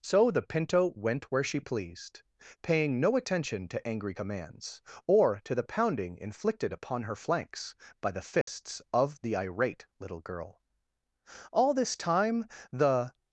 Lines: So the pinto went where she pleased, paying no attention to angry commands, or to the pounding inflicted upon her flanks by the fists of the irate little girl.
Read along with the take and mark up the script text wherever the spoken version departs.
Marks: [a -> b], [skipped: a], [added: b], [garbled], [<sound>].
So the pinto went where she pleased, paying no attention to angry commands, or to the pounding inflicted upon her flanks by the fists [dropout] of the irate little girl. [added: All this time the]